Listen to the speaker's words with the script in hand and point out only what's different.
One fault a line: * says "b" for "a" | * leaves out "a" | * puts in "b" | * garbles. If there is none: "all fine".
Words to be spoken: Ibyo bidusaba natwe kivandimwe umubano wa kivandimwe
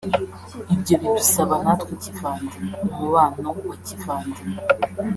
all fine